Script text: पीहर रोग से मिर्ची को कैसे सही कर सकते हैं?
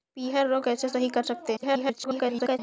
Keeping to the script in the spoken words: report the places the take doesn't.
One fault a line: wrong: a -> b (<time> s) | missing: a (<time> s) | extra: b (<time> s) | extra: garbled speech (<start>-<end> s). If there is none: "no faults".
missing: से मिर्ची को (0.7 s)
extra: garbled speech (1.6-2.6 s)